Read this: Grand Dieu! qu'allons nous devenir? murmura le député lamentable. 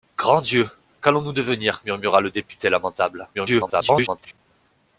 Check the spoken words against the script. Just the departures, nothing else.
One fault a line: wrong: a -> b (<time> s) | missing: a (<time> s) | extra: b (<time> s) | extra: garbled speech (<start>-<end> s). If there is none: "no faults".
extra: garbled speech (3.3-4.4 s)